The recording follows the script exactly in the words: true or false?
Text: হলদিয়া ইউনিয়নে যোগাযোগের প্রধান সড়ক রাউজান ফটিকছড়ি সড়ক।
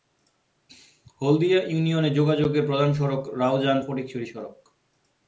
true